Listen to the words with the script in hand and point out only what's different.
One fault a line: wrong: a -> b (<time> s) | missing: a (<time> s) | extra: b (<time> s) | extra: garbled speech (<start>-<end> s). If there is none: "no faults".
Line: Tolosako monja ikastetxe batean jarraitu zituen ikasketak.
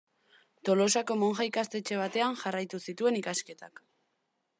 no faults